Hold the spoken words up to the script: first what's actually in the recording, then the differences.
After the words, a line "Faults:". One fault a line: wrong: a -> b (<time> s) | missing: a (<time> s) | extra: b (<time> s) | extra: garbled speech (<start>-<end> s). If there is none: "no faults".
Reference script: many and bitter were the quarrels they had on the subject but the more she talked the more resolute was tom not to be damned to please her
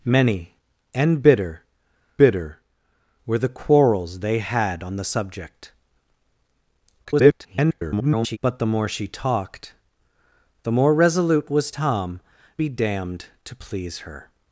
many and bitter bitter were the quarrels they had on the subject [garbled] but the more she talked the more resolute was tom be damned to please her
Faults:
extra: bitter (2.2 s)
extra: garbled speech (7.0-8.4 s)
missing: not to (12.2 s)